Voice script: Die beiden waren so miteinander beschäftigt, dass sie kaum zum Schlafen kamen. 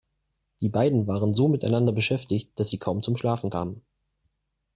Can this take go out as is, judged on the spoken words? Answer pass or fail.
pass